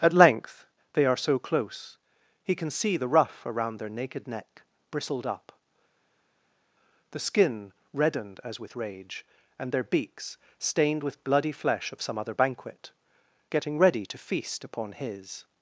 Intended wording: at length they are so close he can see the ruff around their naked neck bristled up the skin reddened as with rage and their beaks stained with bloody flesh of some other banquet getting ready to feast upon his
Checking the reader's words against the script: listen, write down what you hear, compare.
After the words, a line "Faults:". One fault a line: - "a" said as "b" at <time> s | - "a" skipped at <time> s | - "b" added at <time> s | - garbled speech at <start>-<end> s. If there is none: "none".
at length they are so close he can see the ruff around their naked neck bristled up the skin reddened as with rage and their beaks stained with bloody flesh of some other banquet getting ready to feast upon his
Faults:
none